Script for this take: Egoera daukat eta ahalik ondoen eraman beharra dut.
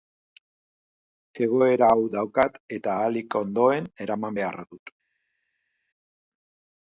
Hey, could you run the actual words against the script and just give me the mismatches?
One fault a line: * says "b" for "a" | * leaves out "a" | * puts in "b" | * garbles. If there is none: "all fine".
* puts in "hau"